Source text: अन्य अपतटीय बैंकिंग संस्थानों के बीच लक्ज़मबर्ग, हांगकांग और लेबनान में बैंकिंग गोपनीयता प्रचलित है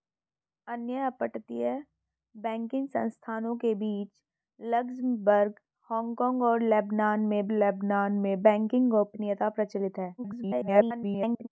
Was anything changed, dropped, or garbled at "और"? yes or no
no